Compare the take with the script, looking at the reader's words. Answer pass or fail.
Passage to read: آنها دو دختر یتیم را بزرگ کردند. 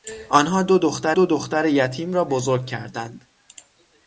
fail